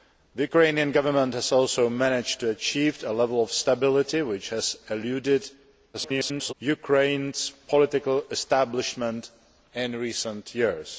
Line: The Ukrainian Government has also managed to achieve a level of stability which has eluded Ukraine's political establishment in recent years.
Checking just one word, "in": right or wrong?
right